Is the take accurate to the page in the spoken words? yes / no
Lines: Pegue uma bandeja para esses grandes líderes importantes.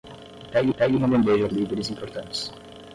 no